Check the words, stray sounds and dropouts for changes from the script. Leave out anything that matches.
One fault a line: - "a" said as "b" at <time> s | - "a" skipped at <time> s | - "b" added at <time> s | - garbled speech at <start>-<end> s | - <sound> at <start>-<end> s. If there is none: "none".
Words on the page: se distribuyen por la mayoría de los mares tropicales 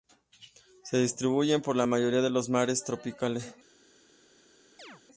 - chirp at 4.8-5.0 s